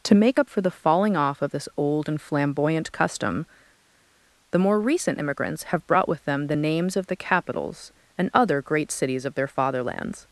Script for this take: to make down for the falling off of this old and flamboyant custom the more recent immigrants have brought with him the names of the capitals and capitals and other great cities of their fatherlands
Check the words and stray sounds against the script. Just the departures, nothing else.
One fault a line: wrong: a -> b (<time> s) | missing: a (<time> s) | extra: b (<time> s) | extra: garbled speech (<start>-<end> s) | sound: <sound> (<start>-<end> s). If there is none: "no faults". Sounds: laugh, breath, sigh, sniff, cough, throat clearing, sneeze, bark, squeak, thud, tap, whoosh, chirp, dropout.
wrong: down -> up (0.4 s)
wrong: him -> them (6.2 s)
missing: capitals and (8.3 s)